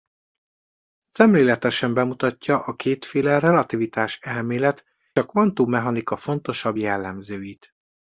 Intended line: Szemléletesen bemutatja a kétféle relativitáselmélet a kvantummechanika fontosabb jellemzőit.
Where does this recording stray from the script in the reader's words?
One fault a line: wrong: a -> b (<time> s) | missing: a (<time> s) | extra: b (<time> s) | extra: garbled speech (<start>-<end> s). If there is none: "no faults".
no faults